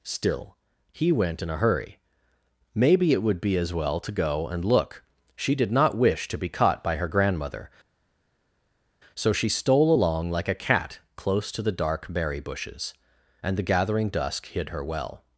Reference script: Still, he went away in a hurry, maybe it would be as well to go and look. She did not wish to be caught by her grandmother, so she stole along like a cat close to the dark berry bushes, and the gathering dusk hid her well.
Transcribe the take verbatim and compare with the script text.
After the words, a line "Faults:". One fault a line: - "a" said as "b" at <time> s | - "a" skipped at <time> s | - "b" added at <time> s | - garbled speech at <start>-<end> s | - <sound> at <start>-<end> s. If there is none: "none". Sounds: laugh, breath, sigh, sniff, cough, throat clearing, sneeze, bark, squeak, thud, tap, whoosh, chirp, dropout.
Still, he went in a hurry, maybe it would be as well to go and look. She did not wish to be caught by her grandmother, so she stole along like a cat close to the dark berry bushes, and the gathering dusk hid her well.
Faults:
- "away" skipped at 1.4 s